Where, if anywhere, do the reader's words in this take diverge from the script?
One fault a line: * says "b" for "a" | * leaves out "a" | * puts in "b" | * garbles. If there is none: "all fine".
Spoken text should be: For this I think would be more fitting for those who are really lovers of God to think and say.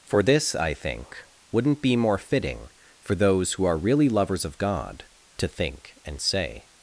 * says "wouldn't" for "would"